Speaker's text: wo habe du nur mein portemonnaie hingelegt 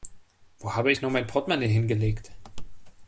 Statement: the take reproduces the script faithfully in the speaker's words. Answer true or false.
false